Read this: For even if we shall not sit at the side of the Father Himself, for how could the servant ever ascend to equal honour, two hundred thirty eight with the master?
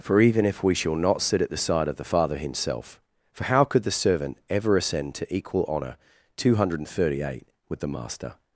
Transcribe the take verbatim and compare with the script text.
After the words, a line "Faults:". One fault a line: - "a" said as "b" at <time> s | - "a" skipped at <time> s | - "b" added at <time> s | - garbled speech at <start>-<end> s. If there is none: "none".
For even if we shall not sit at the side of the Father Himself, for how could the servant ever ascend to equal honour, two hundred thirty eight with the master?
Faults:
none